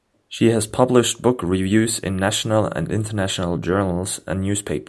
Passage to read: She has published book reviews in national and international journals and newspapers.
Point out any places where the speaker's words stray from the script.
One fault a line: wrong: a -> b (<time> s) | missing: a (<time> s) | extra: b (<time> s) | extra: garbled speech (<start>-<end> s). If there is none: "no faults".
no faults